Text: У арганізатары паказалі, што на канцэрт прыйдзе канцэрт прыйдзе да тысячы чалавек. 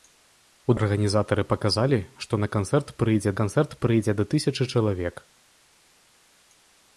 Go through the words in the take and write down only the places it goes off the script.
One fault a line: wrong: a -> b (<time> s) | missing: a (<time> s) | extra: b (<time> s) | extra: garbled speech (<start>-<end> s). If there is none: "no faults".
no faults